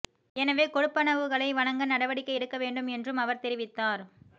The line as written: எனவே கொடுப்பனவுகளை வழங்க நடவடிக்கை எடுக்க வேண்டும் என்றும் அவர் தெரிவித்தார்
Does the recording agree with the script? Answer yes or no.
yes